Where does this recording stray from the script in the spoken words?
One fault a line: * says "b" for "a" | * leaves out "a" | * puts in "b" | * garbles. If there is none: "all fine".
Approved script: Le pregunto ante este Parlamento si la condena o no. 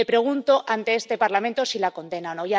all fine